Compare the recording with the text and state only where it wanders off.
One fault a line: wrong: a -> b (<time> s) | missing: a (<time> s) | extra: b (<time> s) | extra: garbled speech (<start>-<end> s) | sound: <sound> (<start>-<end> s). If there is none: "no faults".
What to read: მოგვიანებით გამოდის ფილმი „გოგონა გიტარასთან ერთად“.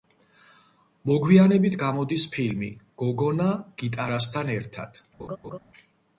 sound: laugh (5.2-5.6 s)